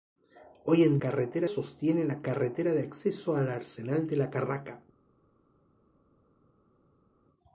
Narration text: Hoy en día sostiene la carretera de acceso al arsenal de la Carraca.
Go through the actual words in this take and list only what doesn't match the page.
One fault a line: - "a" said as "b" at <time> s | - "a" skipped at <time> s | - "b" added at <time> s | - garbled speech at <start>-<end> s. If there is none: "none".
- "día" said as "carretera" at 1.0 s